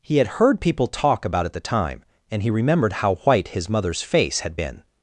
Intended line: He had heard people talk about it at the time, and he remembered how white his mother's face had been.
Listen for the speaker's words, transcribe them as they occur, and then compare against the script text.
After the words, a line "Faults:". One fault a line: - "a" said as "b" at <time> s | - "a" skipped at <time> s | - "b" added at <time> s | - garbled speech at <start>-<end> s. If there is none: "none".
He had heard people talk about it at the time, and he remembered how white his mother's face had been.
Faults:
none